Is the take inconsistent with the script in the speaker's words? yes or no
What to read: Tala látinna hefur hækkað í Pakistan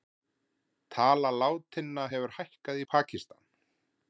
no